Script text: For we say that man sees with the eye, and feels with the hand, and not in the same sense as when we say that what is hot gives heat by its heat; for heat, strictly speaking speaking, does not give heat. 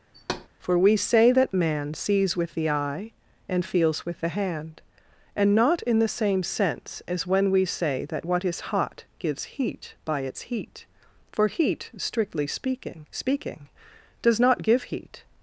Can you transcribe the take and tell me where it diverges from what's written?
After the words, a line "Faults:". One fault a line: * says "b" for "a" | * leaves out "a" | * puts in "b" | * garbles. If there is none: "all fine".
For we say that man sees with the eye, and feels with the hand, and not in the same sense as when we say that what is hot gives heat by its heat; for heat, strictly speaking speaking, does not give heat.
Faults:
all fine